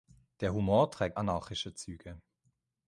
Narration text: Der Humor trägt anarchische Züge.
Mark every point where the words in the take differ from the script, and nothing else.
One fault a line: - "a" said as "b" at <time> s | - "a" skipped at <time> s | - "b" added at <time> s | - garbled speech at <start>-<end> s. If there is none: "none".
none